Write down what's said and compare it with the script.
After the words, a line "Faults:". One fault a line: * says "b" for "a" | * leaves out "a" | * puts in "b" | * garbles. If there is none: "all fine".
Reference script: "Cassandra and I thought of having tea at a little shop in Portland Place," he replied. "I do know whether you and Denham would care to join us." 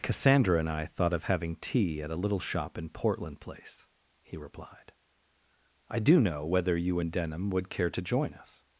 "Cassandra and I thought of having tea at a little shop in Portland Place," he replied. "I do know whether you and Denham would care to join us."
Faults:
all fine